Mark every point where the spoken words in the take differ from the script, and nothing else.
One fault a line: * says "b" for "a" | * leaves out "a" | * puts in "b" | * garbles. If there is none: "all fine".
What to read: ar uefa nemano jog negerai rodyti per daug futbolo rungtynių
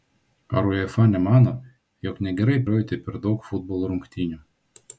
all fine